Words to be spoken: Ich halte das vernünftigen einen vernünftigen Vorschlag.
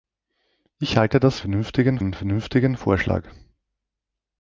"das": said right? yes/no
yes